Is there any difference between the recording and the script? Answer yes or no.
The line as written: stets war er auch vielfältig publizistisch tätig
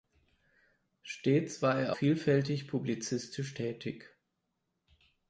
yes